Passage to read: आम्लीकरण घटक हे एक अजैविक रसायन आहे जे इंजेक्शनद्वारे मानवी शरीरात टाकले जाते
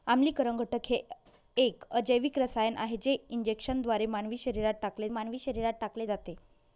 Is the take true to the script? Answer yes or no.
no